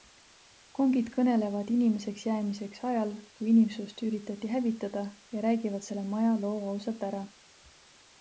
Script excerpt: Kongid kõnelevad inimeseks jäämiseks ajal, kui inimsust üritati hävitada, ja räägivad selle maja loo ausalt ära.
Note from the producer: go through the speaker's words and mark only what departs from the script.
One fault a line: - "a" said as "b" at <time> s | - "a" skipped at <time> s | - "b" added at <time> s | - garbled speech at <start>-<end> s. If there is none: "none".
none